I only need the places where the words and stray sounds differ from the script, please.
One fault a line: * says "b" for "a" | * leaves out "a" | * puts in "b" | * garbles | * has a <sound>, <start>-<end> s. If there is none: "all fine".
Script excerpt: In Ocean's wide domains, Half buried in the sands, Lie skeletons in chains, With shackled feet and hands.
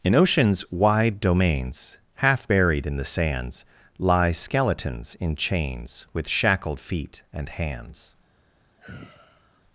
* has a sigh, 8.8-9.6 s